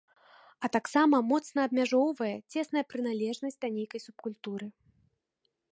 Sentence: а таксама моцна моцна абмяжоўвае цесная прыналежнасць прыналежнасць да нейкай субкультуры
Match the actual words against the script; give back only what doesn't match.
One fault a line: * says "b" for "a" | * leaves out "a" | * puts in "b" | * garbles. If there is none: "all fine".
* leaves out "моцна"
* leaves out "прыналежнасць"